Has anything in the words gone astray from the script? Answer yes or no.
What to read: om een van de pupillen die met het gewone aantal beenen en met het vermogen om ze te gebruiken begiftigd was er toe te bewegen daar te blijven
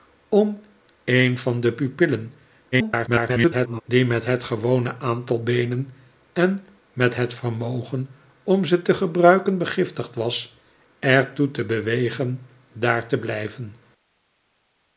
yes